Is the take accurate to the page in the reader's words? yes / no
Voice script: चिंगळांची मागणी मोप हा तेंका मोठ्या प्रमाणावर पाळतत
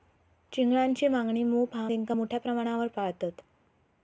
yes